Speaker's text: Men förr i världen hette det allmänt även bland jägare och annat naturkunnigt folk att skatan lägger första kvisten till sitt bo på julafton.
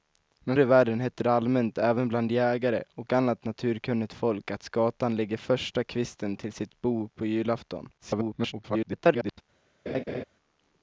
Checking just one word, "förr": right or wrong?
wrong